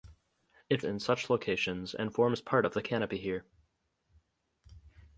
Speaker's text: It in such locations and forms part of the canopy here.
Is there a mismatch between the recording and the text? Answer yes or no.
no